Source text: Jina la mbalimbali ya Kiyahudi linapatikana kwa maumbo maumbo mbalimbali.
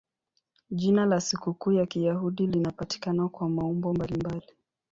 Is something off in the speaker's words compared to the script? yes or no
yes